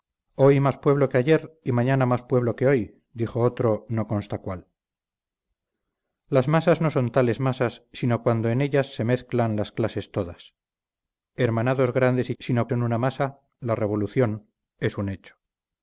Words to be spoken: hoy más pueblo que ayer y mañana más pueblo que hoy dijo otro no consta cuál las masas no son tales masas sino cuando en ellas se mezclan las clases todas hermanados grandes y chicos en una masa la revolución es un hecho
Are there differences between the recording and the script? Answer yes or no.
yes